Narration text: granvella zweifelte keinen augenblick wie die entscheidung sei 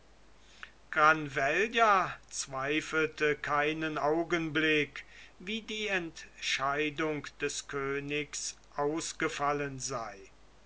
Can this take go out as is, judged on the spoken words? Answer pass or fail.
fail